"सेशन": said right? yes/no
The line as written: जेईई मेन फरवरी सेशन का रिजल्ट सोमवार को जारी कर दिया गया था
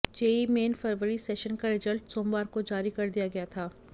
yes